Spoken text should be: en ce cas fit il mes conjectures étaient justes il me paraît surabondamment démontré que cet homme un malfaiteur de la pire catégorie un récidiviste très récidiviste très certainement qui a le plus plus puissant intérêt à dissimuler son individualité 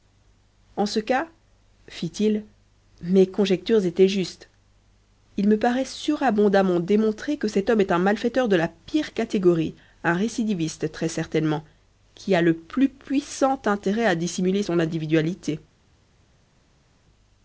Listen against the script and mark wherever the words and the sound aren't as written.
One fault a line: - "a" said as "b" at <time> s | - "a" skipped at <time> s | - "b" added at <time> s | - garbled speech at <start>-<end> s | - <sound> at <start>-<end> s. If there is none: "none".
- "est" added at 7.8 s
- "récidiviste très" skipped at 11.1 s
- "plus" skipped at 12.9 s